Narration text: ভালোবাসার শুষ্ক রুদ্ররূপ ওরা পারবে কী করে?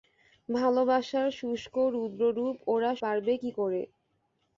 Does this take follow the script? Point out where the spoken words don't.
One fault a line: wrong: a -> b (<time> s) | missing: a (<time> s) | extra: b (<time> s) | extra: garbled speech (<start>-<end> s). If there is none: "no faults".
no faults